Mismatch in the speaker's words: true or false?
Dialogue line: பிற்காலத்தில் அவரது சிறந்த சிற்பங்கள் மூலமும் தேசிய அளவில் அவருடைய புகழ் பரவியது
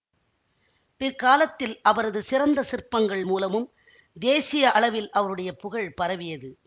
false